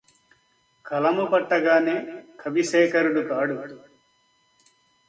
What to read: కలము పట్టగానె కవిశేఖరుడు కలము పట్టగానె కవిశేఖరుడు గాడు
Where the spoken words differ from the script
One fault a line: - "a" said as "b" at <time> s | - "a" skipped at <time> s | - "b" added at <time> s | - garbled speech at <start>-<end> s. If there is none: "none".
- "కలము పట్టగానె కవిశేఖరుడు" skipped at 3.2 s